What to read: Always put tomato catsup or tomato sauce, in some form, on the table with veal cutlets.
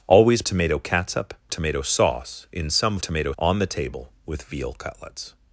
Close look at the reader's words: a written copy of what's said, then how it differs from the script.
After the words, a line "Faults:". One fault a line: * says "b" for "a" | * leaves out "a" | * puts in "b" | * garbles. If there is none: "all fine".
Always tomato catsup tomato sauce, in some tomato, on the table with veal cutlets.
Faults:
* leaves out "put"
* leaves out "or"
* says "tomato" for "form"